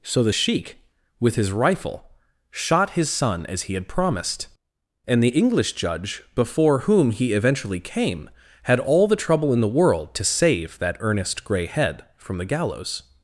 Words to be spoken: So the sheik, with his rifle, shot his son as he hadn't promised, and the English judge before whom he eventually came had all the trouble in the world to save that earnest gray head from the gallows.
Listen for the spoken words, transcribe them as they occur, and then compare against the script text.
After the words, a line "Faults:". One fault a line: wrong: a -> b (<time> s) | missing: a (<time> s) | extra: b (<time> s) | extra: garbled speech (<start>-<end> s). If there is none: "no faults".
So the sheik, with his rifle, shot his son as he had promised, and the English judge before whom he eventually came had all the trouble in the world to save that earnest gray head from the gallows.
Faults:
wrong: hadn't -> had (3.7 s)